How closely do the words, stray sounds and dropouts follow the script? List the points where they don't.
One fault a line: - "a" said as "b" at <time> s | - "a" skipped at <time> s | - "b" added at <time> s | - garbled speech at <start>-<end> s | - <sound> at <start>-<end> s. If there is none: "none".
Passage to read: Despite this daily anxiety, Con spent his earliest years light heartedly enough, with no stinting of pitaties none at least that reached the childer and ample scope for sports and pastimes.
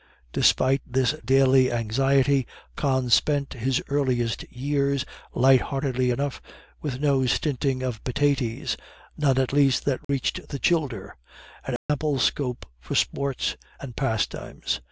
- dropout at 10.0-10.1 s
- dropout at 11.8-11.9 s